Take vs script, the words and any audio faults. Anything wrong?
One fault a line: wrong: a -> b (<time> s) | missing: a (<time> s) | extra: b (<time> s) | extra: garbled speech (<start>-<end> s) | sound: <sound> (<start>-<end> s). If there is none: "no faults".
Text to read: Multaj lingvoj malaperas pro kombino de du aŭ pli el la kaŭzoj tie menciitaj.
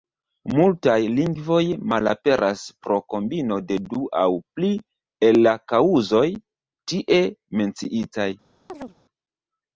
sound: chirp (8.7-9.0 s)